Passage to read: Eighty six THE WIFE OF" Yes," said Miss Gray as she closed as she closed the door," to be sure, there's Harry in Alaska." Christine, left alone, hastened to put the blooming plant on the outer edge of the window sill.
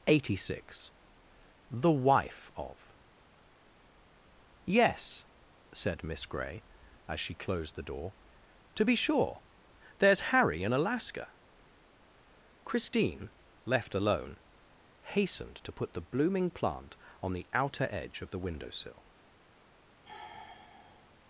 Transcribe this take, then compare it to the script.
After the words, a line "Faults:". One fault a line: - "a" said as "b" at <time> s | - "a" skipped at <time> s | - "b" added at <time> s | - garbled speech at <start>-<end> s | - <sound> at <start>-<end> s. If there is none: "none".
Eighty six THE WIFE OF" Yes," said Miss Gray as she closed the door," to be sure, there's Harry in Alaska." Christine, left alone, hastened to put the blooming plant on the outer edge of the window sill.
Faults:
- "as she closed" skipped at 7.8 s
- sigh at 20.0-21.2 s